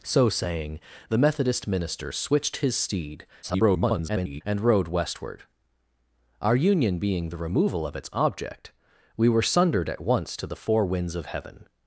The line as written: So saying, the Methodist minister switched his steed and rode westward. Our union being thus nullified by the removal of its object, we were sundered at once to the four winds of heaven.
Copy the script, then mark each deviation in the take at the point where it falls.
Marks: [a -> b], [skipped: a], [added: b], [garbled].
So saying, the Methodist minister switched his steed [garbled] and rode westward. Our union being [skipped: thus nullified by] the removal of its object, we were sundered at once to the four winds of heaven.